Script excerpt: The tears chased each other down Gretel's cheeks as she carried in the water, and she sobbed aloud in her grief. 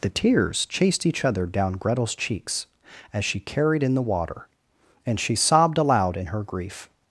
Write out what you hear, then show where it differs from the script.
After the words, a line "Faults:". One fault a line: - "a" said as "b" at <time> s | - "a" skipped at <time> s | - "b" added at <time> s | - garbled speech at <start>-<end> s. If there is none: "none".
The tears chased each other down Gretel's cheeks as she carried in the water, and she sobbed aloud in her grief.
Faults:
none